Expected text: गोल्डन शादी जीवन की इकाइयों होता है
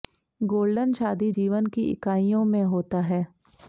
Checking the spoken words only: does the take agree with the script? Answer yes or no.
no